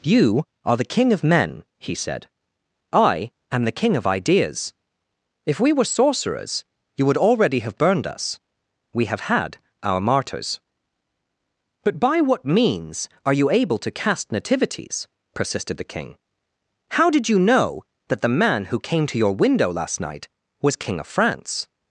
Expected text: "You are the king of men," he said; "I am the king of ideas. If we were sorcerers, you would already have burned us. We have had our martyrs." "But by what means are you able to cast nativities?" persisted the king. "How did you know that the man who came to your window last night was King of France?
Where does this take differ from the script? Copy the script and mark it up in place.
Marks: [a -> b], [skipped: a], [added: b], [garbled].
"You are the king of men," he said; "I am the king of ideas. If we were sorcerers, you would already have burned us. We have had our martyrs." "But by what means are you able to cast nativities?" persisted the king. "How did you know that the man who came to your window last night was King of France?